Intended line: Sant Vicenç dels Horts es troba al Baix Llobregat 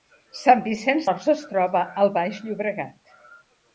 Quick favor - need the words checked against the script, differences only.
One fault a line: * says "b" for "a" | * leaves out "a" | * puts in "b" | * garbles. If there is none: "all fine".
* leaves out "dels"